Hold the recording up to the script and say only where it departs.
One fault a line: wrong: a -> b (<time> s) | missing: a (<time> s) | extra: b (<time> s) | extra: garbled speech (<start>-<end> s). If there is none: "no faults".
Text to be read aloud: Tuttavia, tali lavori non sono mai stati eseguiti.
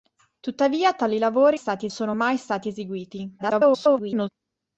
wrong: non -> stati (1.5 s)
extra: garbled speech (3.4-4.3 s)